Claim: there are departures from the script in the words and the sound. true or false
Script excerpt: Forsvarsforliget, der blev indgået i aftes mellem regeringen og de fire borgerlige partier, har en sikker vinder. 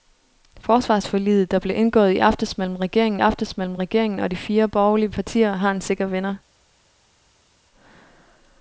true